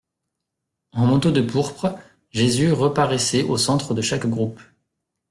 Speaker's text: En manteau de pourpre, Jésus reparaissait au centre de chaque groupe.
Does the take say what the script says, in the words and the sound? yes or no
yes